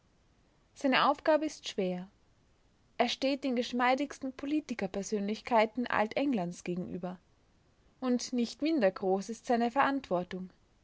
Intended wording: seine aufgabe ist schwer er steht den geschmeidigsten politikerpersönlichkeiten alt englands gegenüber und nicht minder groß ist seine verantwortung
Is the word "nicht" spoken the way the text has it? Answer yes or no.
yes